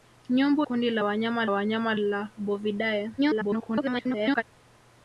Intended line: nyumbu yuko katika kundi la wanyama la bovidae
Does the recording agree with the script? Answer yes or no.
no